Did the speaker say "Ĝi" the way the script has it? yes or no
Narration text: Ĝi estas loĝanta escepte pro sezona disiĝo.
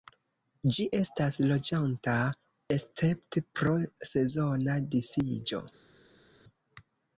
yes